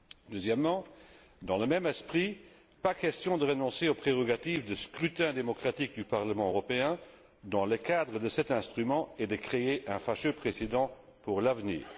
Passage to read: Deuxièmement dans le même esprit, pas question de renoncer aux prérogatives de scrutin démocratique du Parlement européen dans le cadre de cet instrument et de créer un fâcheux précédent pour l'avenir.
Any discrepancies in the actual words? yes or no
no